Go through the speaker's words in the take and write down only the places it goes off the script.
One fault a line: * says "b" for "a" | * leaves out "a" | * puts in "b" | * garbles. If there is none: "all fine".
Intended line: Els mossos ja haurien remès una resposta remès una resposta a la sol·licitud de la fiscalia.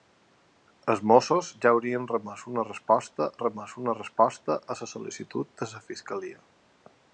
all fine